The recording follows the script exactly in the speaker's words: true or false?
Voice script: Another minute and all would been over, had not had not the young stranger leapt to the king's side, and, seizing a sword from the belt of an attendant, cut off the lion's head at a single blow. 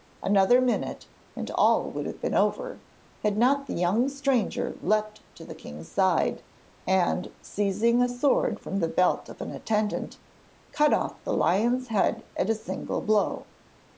false